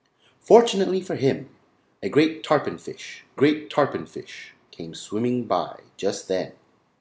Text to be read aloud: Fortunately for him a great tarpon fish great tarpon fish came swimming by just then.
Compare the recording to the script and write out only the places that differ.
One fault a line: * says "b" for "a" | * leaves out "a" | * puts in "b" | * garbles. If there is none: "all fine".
all fine